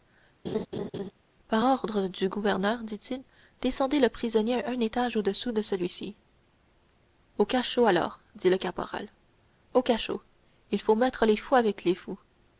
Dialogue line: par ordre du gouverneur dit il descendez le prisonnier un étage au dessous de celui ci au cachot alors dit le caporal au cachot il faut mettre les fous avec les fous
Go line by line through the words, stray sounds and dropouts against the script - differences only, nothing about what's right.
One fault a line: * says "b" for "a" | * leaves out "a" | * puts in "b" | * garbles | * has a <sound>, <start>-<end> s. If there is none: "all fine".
* has a laugh, 0.4-1.1 s